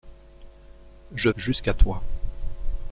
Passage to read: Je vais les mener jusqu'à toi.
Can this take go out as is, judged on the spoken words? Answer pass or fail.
fail